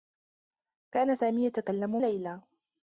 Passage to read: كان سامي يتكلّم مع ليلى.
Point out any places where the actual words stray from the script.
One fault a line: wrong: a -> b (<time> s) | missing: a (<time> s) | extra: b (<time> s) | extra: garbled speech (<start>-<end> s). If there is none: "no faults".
missing: مع (2.0 s)